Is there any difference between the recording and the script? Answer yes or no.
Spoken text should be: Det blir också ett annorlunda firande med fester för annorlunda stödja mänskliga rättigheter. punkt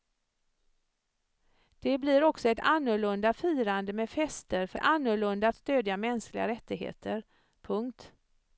no